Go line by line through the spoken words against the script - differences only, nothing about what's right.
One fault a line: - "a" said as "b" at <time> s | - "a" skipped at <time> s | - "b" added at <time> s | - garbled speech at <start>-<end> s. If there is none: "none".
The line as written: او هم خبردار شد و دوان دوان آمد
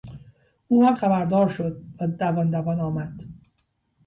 none